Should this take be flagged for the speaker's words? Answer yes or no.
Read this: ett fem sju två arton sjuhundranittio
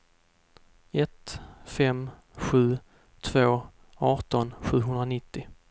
no